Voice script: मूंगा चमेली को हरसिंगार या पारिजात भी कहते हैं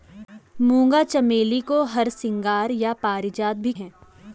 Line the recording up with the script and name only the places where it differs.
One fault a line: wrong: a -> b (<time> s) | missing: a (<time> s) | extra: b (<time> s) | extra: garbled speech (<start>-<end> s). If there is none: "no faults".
missing: कहते (3.7 s)